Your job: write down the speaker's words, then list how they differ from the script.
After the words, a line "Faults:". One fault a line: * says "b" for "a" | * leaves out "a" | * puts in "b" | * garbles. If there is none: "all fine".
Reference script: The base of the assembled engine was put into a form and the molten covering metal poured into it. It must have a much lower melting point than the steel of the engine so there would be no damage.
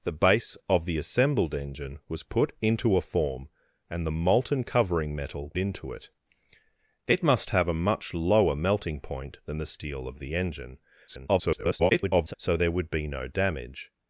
The base of the assembled engine was put into a form and the molten covering metal into it. It must have a much lower melting point than the steel of the engine [garbled] so there would be no damage.
Faults:
* leaves out "poured"
* garbles